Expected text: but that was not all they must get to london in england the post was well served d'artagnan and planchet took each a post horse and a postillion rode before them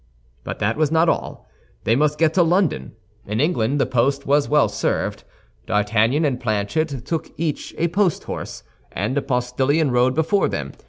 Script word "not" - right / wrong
right